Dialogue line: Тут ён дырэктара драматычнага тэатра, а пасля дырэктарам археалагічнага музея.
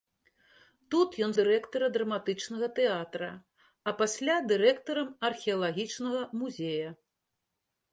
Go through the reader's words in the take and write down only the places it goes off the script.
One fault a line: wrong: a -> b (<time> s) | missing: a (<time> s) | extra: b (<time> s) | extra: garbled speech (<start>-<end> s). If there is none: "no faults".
no faults